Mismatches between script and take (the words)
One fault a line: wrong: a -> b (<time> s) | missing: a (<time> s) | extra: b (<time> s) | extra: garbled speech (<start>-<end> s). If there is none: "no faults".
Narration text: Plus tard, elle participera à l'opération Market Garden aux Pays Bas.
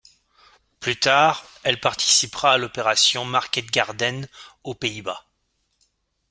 no faults